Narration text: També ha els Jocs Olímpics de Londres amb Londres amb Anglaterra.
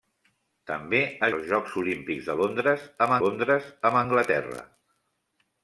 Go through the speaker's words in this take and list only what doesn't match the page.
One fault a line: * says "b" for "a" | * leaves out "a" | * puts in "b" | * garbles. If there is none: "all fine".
all fine